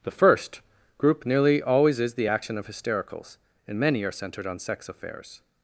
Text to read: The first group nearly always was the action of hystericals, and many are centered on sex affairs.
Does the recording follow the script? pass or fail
fail